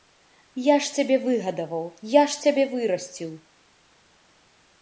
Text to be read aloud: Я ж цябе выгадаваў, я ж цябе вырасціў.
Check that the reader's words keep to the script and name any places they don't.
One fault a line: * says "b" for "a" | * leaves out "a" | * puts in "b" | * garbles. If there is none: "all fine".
all fine